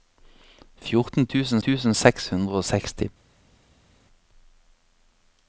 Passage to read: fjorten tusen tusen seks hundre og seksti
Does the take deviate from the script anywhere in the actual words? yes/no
no